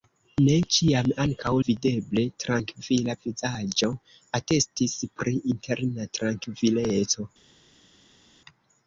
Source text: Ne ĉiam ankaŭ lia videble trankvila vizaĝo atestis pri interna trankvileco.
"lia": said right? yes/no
no